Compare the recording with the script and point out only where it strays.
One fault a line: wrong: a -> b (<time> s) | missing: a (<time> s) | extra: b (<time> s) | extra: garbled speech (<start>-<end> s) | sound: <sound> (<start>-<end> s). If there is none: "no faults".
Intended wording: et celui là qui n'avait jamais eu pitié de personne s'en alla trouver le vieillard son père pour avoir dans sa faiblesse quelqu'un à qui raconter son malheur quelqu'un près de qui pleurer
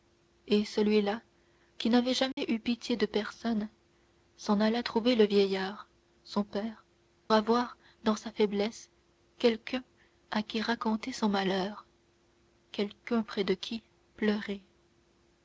sound: dropout (2.3-2.4 s)
missing: pour (6.8 s)